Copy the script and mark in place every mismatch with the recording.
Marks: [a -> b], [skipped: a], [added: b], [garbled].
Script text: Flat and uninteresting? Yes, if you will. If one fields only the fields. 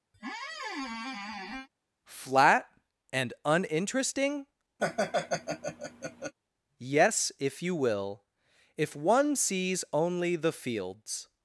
Flat and uninteresting? Yes, if you will. If one [fields -> sees] only the fields.